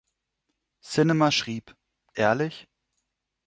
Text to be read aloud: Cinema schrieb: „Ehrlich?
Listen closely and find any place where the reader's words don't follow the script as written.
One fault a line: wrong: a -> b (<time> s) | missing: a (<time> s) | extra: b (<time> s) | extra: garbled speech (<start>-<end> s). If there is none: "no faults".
no faults